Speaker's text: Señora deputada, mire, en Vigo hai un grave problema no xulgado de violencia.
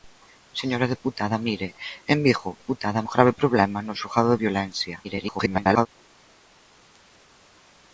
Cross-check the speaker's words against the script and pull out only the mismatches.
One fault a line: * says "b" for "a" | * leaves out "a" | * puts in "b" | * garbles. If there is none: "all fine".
* says "deputada" for "hai"
* garbles